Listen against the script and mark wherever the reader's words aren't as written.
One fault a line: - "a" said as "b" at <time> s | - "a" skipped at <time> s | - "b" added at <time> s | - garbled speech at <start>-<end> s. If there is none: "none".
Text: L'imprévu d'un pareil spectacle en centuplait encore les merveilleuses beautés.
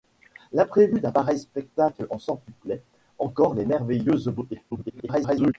- garbled speech at 4.7-5.5 s